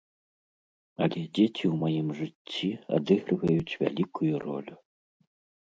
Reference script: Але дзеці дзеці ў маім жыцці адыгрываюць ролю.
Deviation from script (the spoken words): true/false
true